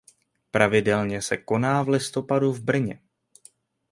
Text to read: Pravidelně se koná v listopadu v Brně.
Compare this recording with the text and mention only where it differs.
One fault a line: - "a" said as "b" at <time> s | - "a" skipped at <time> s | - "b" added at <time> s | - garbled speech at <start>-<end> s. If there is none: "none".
none